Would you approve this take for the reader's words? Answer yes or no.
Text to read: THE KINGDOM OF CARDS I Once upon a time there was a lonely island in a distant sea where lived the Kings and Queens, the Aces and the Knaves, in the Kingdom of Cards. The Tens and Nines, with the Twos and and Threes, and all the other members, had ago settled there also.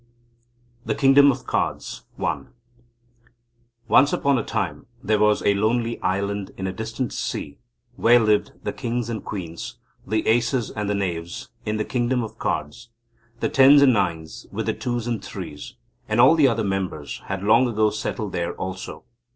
no